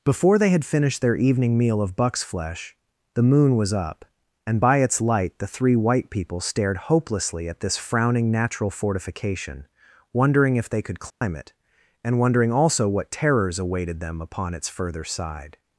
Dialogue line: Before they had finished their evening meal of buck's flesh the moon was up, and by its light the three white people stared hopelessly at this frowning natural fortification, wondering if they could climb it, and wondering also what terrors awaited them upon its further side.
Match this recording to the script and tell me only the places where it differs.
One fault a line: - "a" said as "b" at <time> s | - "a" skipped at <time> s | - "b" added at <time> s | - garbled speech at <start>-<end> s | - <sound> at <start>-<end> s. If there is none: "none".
- dropout at 11.1-11.2 s